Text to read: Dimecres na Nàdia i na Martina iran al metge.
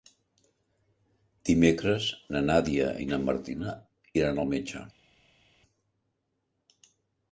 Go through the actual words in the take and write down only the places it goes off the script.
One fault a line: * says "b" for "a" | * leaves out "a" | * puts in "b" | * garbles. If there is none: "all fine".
all fine